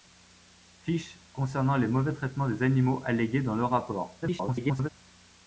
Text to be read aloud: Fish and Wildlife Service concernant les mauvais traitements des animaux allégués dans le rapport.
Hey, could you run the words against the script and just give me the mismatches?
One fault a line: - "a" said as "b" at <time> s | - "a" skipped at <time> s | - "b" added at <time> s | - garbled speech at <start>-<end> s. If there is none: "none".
- "and Wildlife Service" skipped at 1.2 s
- garbled speech at 4.2-4.9 s